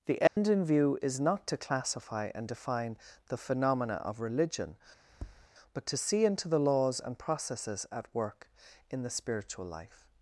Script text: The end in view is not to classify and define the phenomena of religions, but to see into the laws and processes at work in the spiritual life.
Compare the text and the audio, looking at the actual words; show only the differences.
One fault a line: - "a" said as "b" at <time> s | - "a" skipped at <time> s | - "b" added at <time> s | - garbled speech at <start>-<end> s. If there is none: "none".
- "religions" said as "religion" at 4.2 s